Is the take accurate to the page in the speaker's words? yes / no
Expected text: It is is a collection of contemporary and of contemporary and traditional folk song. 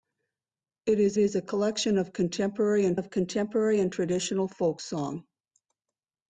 yes